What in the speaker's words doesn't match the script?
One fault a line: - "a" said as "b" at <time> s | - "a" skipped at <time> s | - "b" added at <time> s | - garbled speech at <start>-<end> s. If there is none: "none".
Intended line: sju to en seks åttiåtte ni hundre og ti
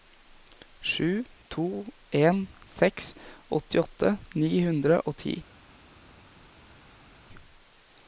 none